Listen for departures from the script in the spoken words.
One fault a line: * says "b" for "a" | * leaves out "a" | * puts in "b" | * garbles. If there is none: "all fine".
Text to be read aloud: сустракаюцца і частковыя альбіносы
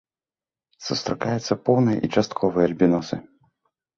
* puts in "поўныя"